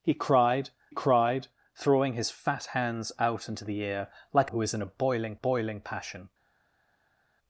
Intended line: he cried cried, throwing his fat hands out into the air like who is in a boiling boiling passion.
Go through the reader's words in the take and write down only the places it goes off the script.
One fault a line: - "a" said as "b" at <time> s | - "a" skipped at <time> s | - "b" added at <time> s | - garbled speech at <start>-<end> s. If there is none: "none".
none